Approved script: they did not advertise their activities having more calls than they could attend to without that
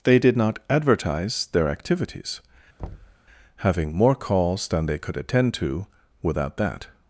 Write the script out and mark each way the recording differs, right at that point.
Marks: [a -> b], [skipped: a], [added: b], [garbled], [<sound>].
they did not advertise their activities [thud] having more calls than they could attend to without that